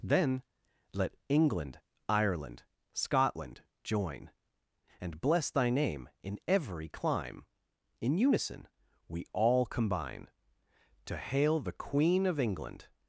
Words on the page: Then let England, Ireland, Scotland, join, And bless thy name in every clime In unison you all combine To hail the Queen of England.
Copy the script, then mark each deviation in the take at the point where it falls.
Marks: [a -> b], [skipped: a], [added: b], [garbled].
Then let England, Ireland, Scotland, join, And bless thy name in every clime In unison [you -> we] all combine To hail the Queen of England.